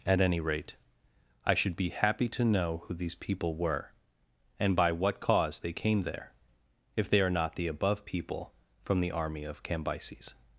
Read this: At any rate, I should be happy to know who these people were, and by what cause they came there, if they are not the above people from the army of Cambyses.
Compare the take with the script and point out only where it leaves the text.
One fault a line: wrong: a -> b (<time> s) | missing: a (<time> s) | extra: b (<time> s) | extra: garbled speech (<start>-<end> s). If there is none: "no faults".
no faults